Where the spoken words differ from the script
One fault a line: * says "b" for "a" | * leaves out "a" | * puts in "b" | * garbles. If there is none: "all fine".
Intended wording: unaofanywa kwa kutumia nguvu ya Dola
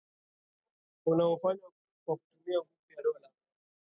all fine